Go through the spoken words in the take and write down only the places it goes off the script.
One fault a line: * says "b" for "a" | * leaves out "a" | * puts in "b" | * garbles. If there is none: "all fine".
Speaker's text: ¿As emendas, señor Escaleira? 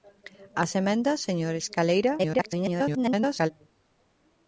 * garbles